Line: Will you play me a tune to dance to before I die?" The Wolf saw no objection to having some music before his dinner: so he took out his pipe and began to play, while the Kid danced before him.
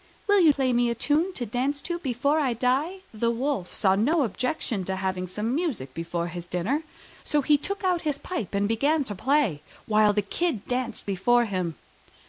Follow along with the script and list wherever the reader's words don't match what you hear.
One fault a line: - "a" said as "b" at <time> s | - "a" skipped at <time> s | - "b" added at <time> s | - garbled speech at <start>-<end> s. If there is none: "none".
none